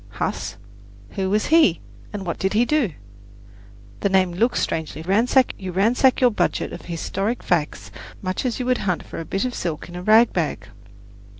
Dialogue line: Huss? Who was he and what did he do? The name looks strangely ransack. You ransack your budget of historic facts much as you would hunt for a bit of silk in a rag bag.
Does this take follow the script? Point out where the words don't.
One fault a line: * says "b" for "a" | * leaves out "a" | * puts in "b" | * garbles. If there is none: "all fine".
all fine